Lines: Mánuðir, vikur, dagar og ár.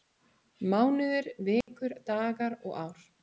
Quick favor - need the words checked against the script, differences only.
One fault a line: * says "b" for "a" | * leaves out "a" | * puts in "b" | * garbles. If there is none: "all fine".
all fine